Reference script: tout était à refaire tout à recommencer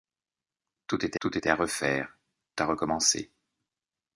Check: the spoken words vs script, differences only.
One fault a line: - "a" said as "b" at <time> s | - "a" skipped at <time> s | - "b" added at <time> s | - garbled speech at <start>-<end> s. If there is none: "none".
- "tout était" added at 1.2 s
- "tout" skipped at 2.2 s